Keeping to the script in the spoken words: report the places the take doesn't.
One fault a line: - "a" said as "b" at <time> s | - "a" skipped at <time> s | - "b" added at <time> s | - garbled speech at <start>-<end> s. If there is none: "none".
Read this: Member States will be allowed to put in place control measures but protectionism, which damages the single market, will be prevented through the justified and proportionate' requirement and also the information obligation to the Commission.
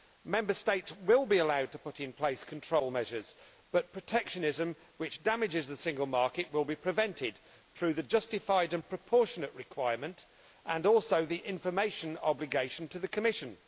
none